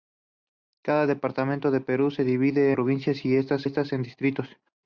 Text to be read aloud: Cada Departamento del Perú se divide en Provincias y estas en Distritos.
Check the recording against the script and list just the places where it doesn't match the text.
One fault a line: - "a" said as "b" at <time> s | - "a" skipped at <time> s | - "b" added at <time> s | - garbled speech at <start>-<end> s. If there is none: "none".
- "en" skipped at 2.7 s
- "estas" added at 3.6 s